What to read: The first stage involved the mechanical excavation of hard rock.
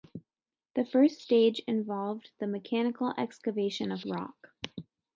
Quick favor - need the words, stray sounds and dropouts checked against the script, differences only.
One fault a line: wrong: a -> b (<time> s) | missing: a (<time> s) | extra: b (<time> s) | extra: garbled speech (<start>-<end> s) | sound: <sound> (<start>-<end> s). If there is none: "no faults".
missing: hard (4.0 s)